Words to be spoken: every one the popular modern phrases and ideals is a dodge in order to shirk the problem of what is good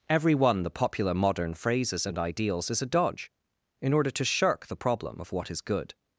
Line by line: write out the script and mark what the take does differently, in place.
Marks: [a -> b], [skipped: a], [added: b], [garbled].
every one the popular modern phrases and ideals is a dodge in order to shirk the problem of what is good